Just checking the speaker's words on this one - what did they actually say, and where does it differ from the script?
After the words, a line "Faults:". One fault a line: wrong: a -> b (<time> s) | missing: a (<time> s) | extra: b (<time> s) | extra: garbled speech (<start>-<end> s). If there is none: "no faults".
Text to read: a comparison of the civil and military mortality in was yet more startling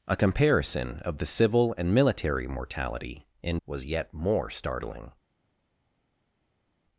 a comparison of the civil and military mortality in was yet more startling
Faults:
no faults